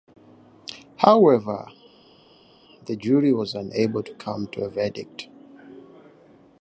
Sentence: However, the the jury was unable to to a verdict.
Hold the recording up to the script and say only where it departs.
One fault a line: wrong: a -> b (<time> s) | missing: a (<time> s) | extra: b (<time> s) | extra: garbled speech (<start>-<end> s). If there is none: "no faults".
missing: the (3.0 s)
extra: come (4.1 s)